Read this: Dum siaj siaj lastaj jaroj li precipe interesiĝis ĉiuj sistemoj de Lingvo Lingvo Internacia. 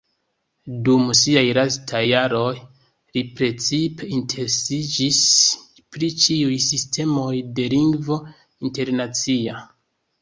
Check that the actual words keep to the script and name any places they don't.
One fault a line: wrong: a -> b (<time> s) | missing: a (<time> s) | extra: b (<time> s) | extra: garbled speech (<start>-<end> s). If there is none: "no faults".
missing: siaj (1.4 s)
extra: pri (6.0 s)
missing: Lingvo (8.2 s)